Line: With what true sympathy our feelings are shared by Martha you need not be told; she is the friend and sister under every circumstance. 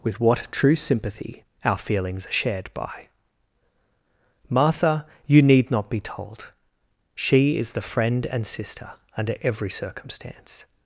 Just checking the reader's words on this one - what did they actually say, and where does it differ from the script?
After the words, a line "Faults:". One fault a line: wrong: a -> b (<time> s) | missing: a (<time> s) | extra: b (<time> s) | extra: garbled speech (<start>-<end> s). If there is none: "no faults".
With what true sympathy our feelings are shared by Martha you need not be told; she is the friend and sister under every circumstance.
Faults:
no faults